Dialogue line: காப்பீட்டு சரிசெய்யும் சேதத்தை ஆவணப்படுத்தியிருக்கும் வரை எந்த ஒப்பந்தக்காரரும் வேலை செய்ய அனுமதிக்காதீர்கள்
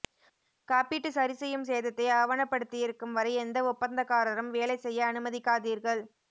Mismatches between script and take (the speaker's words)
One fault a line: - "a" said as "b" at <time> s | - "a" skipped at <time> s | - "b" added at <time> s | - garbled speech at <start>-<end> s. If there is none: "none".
none